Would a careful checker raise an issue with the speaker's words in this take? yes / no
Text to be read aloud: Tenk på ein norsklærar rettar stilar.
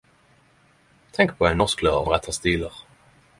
no